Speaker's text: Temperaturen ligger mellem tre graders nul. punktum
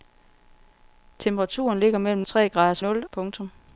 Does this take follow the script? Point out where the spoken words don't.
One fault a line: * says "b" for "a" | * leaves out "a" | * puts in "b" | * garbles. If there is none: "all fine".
all fine